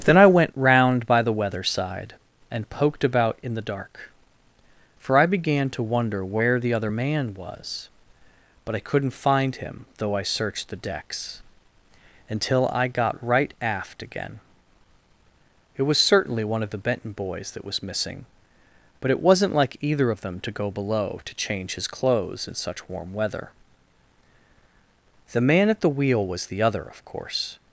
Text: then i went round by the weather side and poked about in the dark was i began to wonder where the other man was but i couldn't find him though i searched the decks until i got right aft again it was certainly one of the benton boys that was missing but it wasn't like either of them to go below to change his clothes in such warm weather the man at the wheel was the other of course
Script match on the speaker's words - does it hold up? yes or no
no